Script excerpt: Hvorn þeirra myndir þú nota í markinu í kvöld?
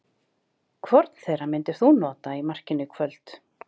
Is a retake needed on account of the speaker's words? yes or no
no